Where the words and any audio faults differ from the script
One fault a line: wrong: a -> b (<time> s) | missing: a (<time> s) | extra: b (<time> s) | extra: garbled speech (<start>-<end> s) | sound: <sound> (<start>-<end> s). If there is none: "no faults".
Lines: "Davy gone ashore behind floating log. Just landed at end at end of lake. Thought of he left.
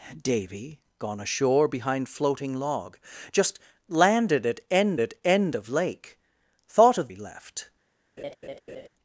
sound: laugh (8.2-8.9 s)